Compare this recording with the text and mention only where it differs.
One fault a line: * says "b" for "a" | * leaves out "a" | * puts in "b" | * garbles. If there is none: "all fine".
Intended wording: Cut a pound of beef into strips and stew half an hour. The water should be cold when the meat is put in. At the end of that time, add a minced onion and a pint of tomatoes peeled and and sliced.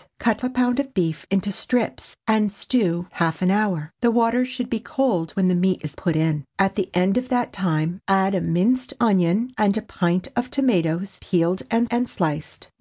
all fine